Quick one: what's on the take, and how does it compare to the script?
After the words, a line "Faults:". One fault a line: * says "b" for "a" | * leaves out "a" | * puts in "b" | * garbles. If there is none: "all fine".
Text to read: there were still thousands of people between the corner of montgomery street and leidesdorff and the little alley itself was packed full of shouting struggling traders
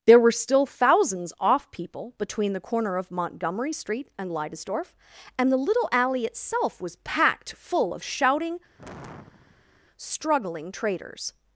there were still thousands off people between the corner of montgomery street and leidesdorff and the little alley itself was packed full of shouting struggling traders
Faults:
* says "off" for "of"